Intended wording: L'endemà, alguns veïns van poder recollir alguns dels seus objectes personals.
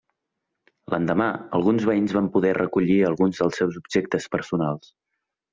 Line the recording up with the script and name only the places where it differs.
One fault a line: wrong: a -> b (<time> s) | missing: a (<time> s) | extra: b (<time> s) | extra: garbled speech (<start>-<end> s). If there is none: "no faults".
no faults